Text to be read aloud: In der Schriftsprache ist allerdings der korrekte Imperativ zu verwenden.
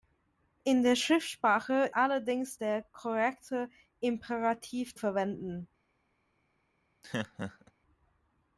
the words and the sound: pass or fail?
fail